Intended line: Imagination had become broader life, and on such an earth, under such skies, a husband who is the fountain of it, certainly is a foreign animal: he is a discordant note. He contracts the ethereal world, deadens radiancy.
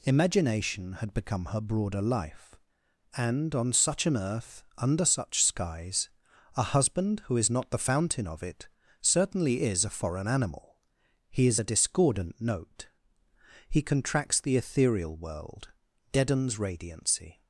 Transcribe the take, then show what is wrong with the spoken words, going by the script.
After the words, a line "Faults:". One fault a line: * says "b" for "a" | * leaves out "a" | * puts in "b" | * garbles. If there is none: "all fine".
Imagination had become her broader life, and on such an earth, under such skies, a husband who is not the fountain of it, certainly is a foreign animal: he is a discordant note. He contracts the ethereal world, deadens radiancy.
Faults:
* puts in "her"
* puts in "not"